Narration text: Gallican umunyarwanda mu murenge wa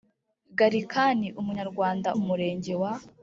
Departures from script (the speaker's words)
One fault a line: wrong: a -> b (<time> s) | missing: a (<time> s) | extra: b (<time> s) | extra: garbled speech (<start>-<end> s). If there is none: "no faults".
no faults